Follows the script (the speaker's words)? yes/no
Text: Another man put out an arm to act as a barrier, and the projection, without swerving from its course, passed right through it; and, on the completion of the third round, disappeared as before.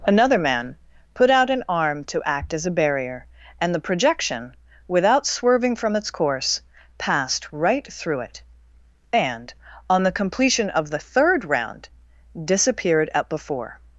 no